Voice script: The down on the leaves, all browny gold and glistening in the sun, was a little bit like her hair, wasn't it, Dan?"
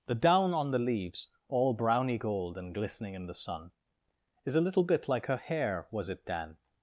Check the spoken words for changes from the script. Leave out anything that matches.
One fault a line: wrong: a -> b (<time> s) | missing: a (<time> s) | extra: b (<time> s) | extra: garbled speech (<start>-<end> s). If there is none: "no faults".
wrong: was -> is (4.5 s)
wrong: wasn't -> was (5.9 s)